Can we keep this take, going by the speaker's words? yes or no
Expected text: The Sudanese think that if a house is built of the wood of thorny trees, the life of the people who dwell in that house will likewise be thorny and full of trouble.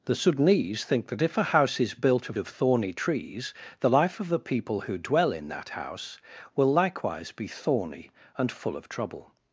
no